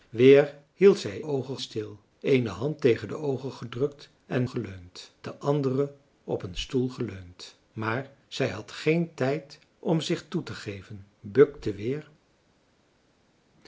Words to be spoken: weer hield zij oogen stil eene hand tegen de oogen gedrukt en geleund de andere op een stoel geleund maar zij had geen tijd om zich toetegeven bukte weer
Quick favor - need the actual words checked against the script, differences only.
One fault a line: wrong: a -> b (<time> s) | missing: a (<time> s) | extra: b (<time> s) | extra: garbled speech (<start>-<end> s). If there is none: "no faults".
no faults